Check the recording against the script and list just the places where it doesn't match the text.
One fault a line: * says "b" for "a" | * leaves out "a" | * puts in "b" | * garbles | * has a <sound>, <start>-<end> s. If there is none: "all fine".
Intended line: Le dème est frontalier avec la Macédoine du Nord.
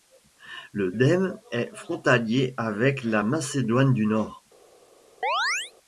* has a chirp, 5.2-5.7 s